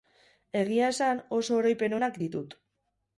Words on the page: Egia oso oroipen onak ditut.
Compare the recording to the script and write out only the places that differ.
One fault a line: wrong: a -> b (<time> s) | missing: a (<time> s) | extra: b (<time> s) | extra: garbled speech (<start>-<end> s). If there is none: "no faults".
extra: esan (0.9 s)